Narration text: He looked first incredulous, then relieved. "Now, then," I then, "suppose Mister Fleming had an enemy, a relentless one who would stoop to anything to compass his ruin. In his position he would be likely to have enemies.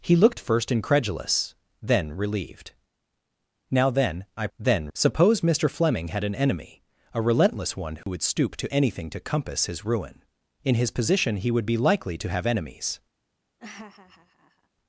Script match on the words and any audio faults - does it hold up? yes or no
no